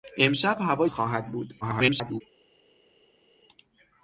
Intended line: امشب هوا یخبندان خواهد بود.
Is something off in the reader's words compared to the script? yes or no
yes